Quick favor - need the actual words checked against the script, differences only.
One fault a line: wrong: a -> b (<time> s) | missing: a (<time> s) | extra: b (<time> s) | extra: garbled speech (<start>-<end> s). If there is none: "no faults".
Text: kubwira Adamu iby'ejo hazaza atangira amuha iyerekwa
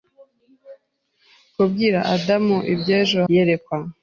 missing: hazaza atangira amuha (3.2 s)